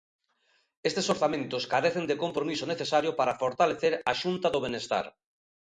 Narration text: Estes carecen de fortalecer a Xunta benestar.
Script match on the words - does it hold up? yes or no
no